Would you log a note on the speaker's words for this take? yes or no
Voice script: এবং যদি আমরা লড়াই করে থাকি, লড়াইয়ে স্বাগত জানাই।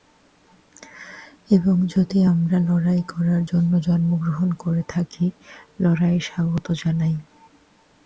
yes